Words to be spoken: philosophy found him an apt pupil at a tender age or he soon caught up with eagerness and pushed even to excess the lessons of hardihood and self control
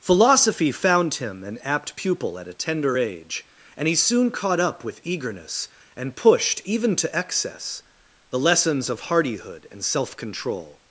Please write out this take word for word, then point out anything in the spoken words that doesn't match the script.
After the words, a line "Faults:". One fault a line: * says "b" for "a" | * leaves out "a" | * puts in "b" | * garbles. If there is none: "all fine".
philosophy found him an apt pupil at a tender age and he soon caught up with eagerness and pushed even to excess the lessons of hardihood and self control
Faults:
* says "and" for "or"